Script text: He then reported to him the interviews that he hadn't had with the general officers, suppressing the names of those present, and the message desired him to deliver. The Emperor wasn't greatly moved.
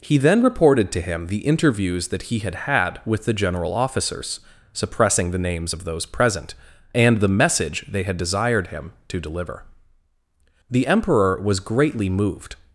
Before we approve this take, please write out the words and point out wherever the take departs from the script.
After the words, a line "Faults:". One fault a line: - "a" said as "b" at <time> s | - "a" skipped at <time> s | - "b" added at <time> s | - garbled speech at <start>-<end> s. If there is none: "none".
He then reported to him the interviews that he had had with the general officers, suppressing the names of those present, and the message they had desired him to deliver. The Emperor was greatly moved.
Faults:
- "hadn't" said as "had" at 2.4 s
- "they had" added at 7.9 s
- "wasn't" said as "was" at 11.4 s